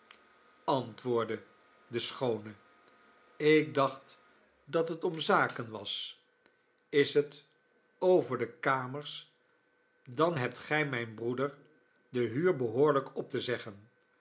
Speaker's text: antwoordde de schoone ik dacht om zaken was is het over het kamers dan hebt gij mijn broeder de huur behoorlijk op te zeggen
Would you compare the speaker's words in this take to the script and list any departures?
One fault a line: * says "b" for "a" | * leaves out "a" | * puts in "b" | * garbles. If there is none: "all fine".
* puts in "dat het"
* says "de" for "het"